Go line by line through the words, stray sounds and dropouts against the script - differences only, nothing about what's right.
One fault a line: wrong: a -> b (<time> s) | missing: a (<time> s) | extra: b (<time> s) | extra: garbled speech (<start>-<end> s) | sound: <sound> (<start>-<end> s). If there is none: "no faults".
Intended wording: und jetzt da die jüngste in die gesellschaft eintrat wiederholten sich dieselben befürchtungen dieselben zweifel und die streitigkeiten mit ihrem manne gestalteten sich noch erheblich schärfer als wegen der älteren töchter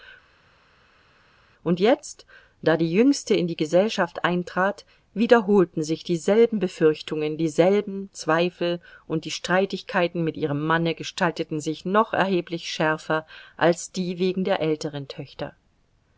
extra: die (13.9 s)